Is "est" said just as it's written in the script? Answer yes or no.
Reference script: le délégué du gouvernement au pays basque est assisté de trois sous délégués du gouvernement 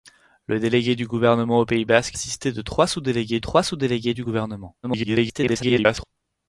no